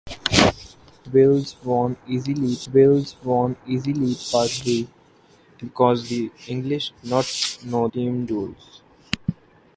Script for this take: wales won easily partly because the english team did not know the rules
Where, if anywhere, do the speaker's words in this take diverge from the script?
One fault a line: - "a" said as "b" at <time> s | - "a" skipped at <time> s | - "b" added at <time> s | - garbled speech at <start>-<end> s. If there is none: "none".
- "wales won easily" added at 2.7 s
- "team did" skipped at 6.9 s
- "the" said as "team" at 7.9 s